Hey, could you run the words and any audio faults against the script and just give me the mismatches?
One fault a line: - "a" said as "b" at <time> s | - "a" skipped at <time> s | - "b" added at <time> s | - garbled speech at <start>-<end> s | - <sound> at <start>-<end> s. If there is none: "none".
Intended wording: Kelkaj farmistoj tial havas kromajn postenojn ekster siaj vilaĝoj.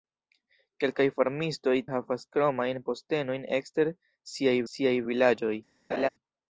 - "tial" skipped at 1.8 s
- "siaj" added at 4.7 s
- laugh at 5.9-6.1 s